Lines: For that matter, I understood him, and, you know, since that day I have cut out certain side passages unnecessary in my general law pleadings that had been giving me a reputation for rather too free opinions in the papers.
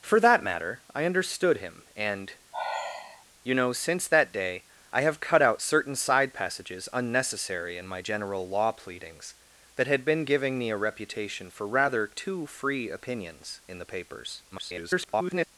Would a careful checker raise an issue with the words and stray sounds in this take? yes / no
yes